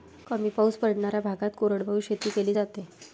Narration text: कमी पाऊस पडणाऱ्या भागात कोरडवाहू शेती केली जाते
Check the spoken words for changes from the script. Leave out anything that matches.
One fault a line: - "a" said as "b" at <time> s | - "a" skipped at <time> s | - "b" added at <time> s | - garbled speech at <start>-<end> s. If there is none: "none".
none